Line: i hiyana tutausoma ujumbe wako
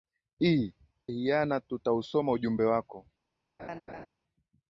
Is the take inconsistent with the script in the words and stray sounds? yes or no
yes